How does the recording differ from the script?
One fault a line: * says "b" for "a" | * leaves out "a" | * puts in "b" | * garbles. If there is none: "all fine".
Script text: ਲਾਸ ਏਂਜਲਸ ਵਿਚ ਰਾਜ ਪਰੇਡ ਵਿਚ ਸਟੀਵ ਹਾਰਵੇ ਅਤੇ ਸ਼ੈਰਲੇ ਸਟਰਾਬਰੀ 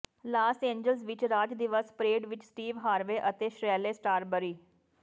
* puts in "ਦਿਵਸ"